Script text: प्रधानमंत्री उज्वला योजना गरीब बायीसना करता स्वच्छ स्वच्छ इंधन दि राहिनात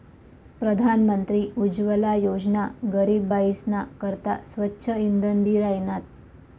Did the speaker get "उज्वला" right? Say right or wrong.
right